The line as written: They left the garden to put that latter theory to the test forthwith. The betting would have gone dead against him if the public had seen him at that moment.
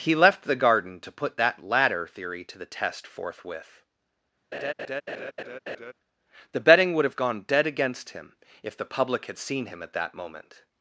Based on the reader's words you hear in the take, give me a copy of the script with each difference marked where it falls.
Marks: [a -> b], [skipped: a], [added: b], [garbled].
[They -> He] left the garden to put that latter theory to the test forthwith. The betting would have gone dead against him if the public had seen him at that moment.